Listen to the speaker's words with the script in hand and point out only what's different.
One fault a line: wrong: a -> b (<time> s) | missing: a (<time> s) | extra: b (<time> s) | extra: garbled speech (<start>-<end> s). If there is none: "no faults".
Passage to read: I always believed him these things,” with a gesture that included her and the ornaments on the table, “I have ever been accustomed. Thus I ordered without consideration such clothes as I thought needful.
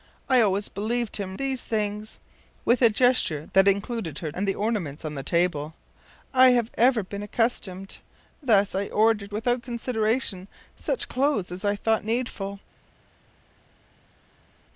no faults